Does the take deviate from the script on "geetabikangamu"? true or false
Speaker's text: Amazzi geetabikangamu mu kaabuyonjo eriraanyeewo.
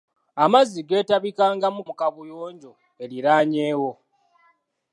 false